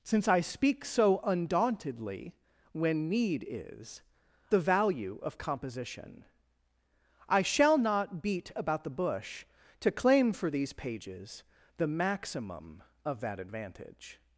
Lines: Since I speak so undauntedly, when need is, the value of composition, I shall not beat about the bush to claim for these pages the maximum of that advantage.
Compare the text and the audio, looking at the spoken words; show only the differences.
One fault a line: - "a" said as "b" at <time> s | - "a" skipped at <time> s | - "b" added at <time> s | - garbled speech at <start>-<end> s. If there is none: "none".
none